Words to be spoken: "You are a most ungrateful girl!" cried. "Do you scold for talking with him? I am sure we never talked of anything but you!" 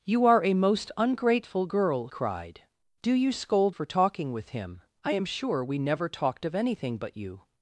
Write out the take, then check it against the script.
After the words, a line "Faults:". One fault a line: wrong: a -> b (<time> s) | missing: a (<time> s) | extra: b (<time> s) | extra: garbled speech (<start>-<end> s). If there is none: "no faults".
"You are a most ungrateful girl!" cried. "Do you scold for talking with him? I am sure we never talked of anything but you!"
Faults:
no faults